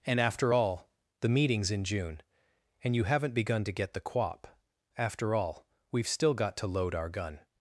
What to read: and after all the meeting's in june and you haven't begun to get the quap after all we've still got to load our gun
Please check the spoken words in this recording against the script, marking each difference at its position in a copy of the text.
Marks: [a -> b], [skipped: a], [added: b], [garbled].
and after all the meeting's in june and you haven't begun to get the quap after all we've still got to load our gun